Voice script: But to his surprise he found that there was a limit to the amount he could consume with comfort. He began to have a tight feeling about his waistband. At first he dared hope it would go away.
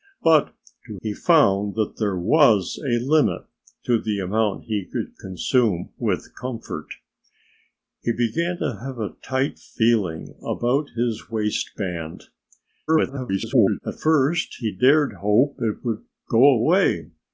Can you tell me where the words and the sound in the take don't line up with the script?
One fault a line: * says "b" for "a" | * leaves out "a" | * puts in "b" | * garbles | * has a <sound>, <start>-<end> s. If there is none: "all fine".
* leaves out "his surprise"
* garbles